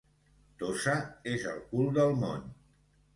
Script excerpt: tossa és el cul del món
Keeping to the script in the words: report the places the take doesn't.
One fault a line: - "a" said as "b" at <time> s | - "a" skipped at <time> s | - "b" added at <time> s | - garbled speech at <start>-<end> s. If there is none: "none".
none